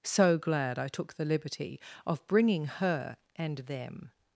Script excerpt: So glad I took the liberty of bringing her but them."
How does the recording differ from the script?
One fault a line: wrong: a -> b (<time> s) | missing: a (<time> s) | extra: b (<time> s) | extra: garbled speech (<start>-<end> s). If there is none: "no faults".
wrong: but -> and (3.4 s)